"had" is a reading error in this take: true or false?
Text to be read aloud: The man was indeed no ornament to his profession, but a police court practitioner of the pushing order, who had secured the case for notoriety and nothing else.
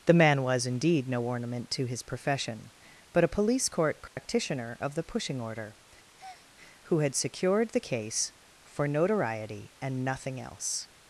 false